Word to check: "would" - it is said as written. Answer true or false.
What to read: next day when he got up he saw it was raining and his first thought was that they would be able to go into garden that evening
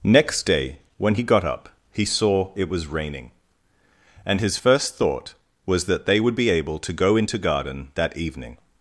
true